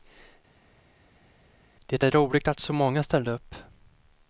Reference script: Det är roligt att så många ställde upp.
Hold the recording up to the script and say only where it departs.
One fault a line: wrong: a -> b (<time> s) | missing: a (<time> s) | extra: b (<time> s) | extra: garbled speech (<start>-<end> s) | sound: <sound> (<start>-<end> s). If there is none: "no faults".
no faults